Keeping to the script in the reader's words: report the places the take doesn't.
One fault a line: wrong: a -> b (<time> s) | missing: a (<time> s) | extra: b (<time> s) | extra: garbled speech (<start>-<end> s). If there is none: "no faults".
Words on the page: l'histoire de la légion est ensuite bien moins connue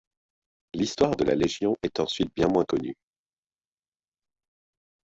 no faults